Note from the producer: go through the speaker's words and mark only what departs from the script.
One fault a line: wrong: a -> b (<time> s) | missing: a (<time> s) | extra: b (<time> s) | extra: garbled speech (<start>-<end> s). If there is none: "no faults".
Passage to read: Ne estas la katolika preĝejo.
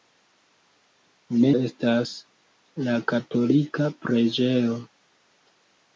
no faults